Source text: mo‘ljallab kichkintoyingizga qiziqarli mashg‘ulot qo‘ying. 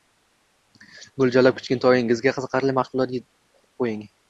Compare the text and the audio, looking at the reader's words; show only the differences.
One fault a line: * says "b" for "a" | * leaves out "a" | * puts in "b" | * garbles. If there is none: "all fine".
all fine